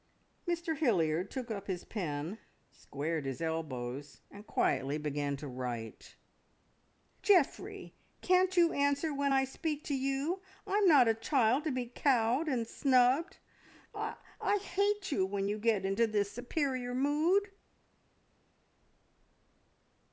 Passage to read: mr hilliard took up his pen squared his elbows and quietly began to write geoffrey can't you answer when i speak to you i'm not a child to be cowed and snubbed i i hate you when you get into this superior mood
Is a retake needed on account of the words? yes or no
no